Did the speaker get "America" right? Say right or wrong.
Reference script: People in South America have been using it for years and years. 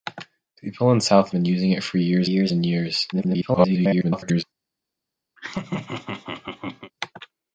wrong